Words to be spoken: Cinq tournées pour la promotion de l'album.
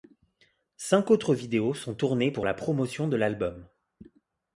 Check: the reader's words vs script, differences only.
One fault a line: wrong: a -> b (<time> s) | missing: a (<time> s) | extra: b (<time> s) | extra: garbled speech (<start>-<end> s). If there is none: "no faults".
extra: autres vidéos sont (1.1 s)